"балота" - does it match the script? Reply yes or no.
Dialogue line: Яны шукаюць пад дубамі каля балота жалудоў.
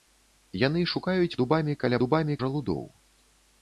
no